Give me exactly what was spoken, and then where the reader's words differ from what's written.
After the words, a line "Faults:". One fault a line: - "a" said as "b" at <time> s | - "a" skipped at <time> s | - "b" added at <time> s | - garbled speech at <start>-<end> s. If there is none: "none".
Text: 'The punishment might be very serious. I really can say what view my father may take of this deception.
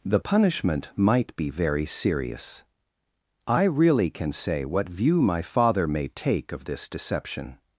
'The punishment might be very serious. I really can say what view my father may take of this deception.
Faults:
none